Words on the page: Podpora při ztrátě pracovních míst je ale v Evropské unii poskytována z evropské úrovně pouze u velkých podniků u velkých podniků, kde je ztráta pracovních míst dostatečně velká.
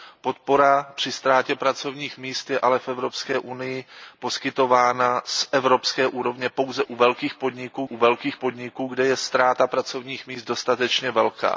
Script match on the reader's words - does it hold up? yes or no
yes